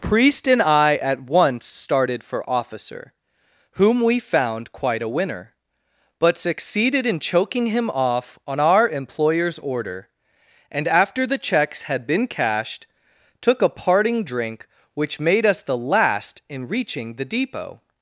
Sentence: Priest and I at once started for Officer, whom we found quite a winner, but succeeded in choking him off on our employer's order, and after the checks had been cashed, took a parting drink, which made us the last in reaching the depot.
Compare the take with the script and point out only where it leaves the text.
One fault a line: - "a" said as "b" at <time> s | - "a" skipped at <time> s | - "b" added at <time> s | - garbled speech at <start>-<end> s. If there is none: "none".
none